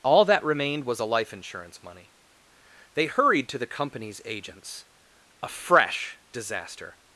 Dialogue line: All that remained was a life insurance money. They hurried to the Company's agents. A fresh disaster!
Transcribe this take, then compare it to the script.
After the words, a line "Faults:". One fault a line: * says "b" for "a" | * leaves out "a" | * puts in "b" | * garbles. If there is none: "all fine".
All that remained was a life insurance money. They hurried to the Company's agents. A fresh disaster!
Faults:
all fine